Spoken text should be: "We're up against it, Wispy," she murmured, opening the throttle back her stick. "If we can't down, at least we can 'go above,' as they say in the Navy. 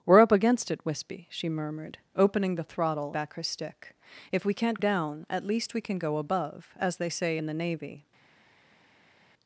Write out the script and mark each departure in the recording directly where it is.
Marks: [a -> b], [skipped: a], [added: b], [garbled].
"We're up against it, Wispy," she murmured, opening the throttle back her stick. "If we can't down, at least we can 'go above,' as they say in the Navy.